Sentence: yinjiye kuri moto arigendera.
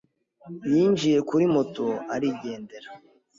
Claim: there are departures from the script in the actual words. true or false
false